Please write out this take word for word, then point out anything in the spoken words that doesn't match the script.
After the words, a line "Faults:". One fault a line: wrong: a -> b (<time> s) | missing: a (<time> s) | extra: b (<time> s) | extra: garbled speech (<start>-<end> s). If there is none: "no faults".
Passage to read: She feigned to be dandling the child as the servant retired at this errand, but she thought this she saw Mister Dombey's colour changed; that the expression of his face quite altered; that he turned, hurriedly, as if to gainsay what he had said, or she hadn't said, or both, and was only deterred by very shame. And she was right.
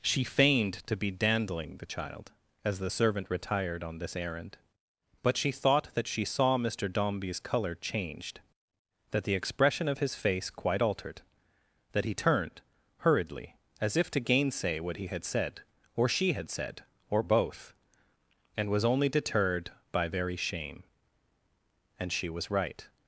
She feigned to be dandling the child as the servant retired on this errand, but she thought that she saw Mister Dombey's colour changed; that the expression of his face quite altered; that he turned, hurriedly, as if to gainsay what he had said, or she had said, or both, and was only deterred by very shame. And she was right.
Faults:
wrong: at -> on (3.8 s)
wrong: this -> that (5.9 s)
wrong: hadn't -> had (16.3 s)